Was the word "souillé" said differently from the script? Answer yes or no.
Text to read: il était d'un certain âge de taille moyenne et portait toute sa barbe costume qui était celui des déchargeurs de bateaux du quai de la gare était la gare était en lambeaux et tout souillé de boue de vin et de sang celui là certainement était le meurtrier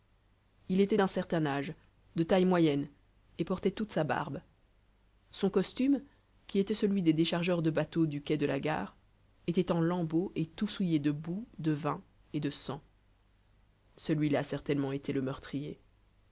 no